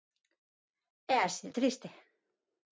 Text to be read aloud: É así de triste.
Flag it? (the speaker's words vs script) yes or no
no